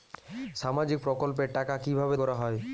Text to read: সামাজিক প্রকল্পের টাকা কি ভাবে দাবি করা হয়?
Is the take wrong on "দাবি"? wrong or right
wrong